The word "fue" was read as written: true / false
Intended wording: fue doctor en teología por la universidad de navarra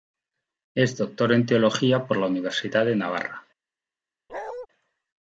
false